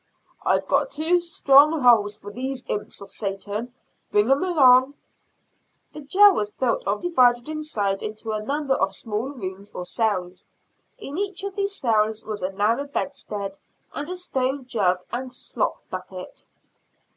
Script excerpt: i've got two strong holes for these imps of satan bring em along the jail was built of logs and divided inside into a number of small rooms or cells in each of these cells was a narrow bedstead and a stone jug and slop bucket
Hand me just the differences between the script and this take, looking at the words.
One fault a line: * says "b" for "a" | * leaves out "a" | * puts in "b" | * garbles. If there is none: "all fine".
* leaves out "logs and"